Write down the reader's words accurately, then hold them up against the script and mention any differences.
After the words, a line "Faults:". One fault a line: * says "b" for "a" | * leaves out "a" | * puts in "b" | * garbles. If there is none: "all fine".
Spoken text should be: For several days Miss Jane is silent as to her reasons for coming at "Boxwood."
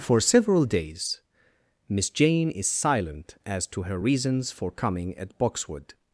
For several days Miss Jane is silent as to her reasons for coming at "Boxwood."
Faults:
all fine